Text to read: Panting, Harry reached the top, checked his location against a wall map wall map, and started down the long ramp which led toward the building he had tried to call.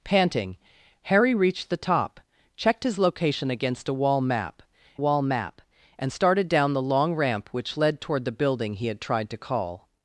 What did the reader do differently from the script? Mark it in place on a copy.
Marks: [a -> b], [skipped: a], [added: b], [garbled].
Panting, Harry reached the top, checked his location against a wall map wall map, and started down the long ramp which led toward the building he had tried to call.